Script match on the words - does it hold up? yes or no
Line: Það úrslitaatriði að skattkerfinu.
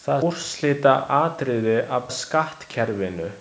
yes